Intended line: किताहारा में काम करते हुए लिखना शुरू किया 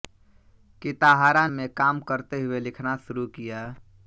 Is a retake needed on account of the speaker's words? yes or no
no